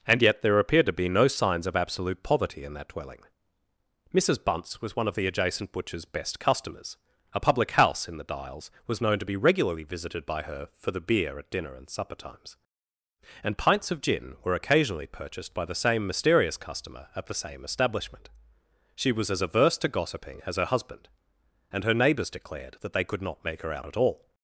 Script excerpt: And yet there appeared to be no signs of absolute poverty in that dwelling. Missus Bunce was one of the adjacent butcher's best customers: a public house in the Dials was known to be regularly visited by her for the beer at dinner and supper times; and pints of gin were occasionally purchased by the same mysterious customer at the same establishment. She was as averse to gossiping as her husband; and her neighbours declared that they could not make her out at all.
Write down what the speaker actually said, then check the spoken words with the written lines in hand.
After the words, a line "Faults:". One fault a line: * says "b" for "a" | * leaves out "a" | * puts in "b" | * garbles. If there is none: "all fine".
And yet there appeared to be no signs of absolute poverty in that dwelling. Missus Bunce was one of the adjacent butcher's best customers: a public house in the Dials was known to be regularly visited by her for the beer at dinner and supper times; and pints of gin were occasionally purchased by the same mysterious customer at the same establishment. She was as averse to gossiping as her husband; and her neighbours declared that they could not make her out at all.
Faults:
all fine